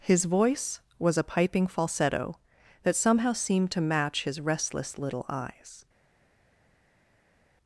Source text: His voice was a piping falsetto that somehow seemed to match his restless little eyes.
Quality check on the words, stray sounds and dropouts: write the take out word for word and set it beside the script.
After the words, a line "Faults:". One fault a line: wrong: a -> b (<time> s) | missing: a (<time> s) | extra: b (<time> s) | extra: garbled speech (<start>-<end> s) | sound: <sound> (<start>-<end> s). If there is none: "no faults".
His voice was a piping falsetto that somehow seemed to match his restless little eyes.
Faults:
no faults